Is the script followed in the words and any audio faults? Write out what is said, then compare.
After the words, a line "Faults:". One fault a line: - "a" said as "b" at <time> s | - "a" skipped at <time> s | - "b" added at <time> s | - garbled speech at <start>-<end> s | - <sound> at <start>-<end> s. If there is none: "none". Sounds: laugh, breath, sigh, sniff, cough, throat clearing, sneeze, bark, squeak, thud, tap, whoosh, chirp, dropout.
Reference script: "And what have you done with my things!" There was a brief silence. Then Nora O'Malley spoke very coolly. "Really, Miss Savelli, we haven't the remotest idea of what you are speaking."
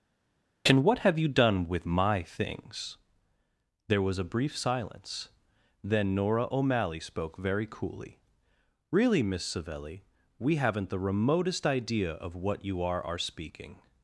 "And what have you done with my things!" There was a brief silence. Then Nora O'Malley spoke very coolly. "Really, Miss Savelli, we haven't the remotest idea of what you are are speaking."
Faults:
- "are" added at 13.0 s